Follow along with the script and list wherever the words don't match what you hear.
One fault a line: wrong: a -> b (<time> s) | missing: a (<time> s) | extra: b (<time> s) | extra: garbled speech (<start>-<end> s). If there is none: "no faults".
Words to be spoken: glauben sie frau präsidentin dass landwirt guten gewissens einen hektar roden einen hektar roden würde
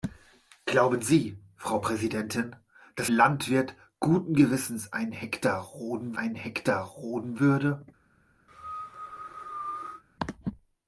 no faults